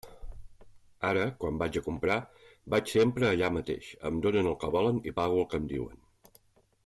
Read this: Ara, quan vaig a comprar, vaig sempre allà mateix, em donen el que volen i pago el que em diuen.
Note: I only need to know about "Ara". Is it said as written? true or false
true